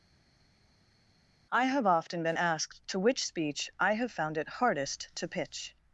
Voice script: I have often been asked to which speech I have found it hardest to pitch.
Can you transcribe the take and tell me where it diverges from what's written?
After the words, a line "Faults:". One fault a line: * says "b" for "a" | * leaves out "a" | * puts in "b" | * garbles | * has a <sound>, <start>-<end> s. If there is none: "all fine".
I have often been asked to which speech I have found it hardest to pitch.
Faults:
all fine